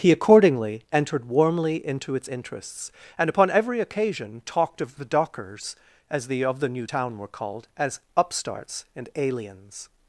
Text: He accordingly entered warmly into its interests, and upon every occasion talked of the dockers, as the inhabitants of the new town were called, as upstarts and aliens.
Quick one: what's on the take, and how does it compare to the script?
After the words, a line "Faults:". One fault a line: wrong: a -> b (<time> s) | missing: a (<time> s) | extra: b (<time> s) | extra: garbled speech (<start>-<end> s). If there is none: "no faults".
He accordingly entered warmly into its interests, and upon every occasion talked of the dockers, as the of the new town were called, as upstarts and aliens.
Faults:
missing: inhabitants (6.4 s)